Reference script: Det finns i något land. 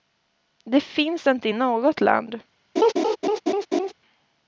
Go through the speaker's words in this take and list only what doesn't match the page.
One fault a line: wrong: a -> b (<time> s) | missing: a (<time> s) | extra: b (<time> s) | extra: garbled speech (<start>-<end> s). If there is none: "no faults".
extra: inte (1.3 s)